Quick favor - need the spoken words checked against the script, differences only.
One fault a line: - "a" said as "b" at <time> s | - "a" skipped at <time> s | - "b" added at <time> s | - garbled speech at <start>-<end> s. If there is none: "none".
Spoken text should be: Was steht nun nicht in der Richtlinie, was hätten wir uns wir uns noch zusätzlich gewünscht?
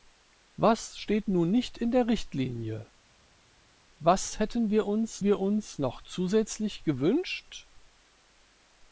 none